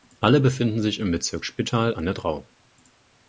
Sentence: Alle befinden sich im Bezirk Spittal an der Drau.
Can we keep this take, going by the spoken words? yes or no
yes